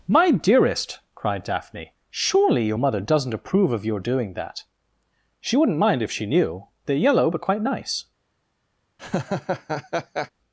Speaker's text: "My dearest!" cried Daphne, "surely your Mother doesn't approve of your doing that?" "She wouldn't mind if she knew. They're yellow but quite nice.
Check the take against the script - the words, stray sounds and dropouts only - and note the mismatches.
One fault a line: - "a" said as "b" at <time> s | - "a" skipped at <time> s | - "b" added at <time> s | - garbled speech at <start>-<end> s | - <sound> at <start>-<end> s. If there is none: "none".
- laugh at 9.0-10.3 s